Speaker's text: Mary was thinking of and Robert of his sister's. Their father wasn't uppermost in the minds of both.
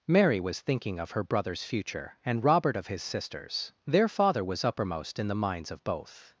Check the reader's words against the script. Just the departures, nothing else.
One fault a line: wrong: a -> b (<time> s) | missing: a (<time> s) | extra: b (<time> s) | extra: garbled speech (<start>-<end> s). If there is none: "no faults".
extra: her brother's future (1.1 s)
wrong: wasn't -> was (4.4 s)